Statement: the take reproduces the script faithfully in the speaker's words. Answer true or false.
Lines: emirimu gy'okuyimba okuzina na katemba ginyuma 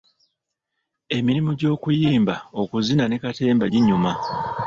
false